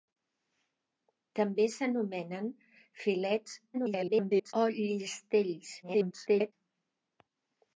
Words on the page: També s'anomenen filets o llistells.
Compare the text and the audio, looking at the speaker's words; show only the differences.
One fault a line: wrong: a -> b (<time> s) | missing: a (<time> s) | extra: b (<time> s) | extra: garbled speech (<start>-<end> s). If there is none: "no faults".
extra: garbled speech (3.7-4.5 s)
extra: garbled speech (5.8-6.5 s)